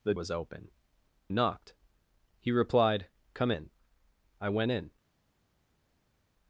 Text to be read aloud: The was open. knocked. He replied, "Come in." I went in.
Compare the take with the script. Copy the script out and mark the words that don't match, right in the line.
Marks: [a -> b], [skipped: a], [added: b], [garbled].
The was open. knocked. He replied, "Come in." I went in.